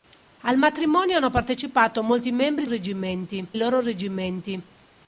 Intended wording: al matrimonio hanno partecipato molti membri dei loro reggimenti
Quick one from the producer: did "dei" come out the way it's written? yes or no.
no